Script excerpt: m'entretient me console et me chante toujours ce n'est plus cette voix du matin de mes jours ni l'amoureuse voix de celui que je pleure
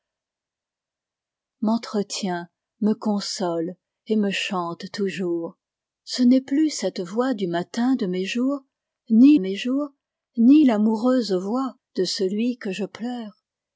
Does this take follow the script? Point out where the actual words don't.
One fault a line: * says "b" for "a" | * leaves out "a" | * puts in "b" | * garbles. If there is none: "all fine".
* puts in "mes jours ni"